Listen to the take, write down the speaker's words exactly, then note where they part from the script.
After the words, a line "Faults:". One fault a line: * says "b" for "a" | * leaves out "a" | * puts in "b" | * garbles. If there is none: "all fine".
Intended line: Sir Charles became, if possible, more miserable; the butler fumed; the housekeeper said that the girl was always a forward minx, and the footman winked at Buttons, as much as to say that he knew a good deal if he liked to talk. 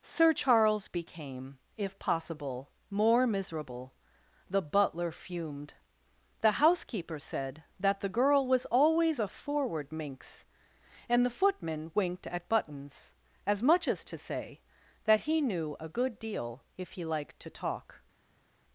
Sir Charles became, if possible, more miserable; the butler fumed; the housekeeper said that the girl was always a forward minx, and the footman winked at Buttons, as much as to say that he knew a good deal if he liked to talk.
Faults:
all fine